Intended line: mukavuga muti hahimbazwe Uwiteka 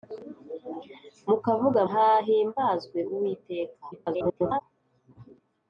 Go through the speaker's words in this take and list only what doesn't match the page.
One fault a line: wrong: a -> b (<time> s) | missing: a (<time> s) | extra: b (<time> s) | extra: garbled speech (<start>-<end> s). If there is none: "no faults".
missing: muti (1.8 s)
extra: garbled speech (3.9-4.6 s)